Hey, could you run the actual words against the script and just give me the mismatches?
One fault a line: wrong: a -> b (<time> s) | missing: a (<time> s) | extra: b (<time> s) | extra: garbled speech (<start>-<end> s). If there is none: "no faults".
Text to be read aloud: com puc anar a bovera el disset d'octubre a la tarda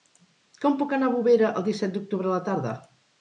no faults